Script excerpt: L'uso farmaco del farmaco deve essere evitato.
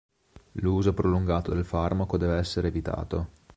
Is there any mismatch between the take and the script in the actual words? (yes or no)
yes